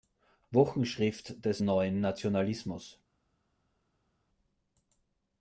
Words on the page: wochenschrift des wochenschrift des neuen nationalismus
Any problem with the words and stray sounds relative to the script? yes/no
yes